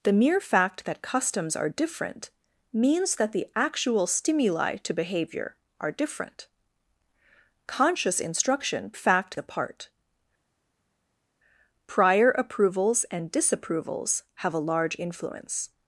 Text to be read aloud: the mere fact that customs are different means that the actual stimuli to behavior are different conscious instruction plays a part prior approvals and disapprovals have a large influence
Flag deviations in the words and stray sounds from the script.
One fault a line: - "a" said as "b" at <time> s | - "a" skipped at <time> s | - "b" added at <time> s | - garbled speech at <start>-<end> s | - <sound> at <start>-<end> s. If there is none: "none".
- "plays" said as "fact" at 8.9 s